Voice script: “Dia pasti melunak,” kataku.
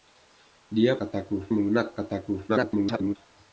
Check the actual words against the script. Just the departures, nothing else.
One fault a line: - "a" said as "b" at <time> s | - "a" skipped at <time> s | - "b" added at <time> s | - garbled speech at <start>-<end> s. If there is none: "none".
- "pasti" said as "kataku" at 1.0 s
- garbled speech at 2.5-3.2 s